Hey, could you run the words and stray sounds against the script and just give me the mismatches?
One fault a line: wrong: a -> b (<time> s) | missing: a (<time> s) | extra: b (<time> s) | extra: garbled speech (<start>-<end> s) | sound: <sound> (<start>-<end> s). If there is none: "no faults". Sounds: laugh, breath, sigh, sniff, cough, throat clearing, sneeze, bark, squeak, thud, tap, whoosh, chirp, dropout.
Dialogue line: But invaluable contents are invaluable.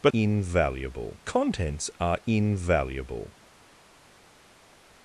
no faults